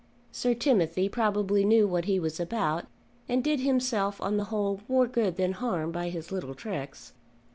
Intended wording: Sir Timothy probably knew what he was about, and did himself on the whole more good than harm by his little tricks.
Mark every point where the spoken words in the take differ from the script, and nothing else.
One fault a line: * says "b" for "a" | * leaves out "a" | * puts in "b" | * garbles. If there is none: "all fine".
all fine